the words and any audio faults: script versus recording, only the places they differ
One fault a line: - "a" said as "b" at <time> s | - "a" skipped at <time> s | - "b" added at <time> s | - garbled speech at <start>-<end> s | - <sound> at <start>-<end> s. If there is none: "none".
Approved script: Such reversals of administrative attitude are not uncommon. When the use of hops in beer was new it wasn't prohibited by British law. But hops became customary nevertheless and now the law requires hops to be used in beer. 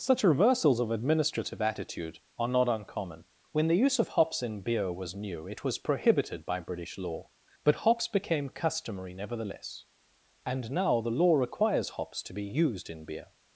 - "wasn't" said as "was" at 5.6 s